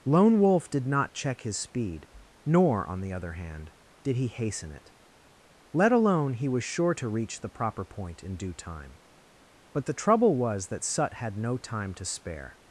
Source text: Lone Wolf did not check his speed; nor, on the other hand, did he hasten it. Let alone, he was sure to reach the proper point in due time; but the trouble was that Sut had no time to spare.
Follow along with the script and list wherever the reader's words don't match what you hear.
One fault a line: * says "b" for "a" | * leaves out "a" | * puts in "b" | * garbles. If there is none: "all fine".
all fine